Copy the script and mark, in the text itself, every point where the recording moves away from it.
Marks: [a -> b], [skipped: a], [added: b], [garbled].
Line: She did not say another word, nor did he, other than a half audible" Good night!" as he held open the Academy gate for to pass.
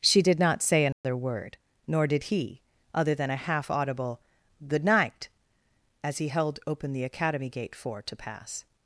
She did not say another word, nor did he, other than a half audible" Good night!" as he held open the Academy gate for to pass.